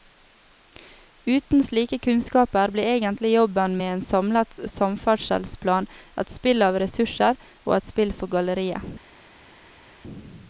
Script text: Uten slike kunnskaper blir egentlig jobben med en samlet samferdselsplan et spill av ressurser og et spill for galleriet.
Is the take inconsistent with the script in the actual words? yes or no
no